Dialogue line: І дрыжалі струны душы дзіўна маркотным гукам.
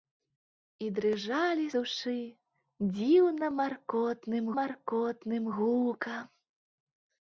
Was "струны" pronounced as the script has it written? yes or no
no